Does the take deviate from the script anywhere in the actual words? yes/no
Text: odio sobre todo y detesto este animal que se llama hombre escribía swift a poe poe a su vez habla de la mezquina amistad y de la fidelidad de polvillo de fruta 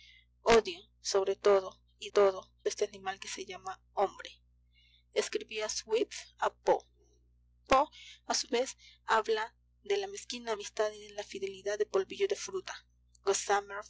yes